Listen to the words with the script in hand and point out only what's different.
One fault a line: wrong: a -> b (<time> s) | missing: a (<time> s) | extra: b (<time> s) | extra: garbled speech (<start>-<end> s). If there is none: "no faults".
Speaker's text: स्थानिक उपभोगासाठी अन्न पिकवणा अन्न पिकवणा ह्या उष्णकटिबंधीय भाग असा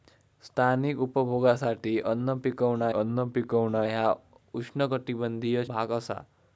no faults